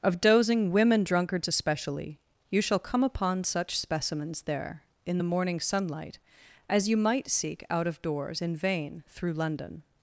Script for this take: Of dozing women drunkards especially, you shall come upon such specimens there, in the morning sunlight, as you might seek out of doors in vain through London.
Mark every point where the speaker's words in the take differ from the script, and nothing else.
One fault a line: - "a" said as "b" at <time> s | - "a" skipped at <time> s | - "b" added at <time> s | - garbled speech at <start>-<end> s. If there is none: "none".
none